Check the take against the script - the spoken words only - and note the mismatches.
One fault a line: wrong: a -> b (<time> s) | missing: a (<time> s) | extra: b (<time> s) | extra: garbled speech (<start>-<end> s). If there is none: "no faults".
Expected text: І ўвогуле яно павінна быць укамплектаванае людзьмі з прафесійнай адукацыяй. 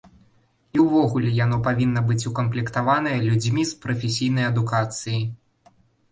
no faults